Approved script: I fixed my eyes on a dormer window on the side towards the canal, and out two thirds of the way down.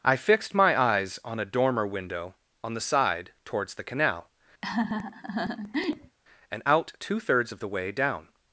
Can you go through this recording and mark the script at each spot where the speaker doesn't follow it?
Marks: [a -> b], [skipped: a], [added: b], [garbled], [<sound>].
I fixed my eyes on a dormer window on the side towards the canal, [laugh] and out two thirds of the way down.